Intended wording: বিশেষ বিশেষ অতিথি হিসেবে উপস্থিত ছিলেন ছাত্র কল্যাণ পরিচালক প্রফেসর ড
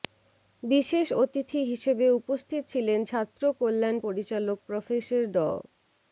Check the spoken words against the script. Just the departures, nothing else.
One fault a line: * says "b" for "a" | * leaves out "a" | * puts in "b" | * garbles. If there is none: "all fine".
* leaves out "বিশেষ"